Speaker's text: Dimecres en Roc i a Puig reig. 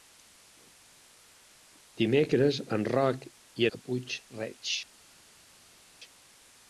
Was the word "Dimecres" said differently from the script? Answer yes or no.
no